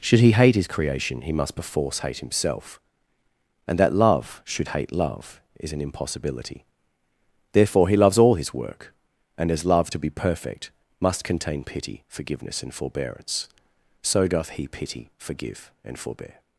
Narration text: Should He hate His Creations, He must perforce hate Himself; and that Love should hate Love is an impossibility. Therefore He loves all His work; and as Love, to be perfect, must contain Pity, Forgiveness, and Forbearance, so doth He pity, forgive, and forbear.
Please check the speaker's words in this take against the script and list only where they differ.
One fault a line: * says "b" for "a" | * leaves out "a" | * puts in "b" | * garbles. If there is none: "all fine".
* says "Creation" for "Creations"